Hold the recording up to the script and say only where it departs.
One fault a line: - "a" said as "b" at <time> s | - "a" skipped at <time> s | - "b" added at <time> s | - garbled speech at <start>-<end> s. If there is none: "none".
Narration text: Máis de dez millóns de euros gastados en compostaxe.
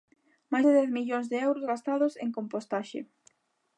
none